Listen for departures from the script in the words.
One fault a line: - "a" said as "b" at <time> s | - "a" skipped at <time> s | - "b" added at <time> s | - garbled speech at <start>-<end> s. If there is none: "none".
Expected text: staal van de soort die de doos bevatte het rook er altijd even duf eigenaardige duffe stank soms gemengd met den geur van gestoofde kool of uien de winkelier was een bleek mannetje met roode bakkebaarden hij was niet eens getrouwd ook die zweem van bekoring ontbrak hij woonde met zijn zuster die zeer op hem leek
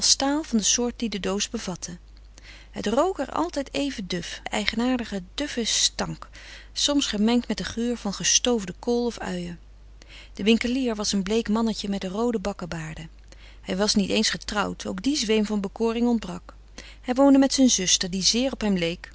none